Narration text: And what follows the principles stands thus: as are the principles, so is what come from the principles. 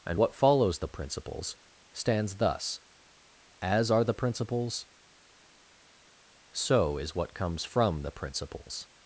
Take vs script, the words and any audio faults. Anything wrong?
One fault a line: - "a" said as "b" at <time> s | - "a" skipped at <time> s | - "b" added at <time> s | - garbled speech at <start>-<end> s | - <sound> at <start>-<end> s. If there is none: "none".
- "come" said as "comes" at 7.3 s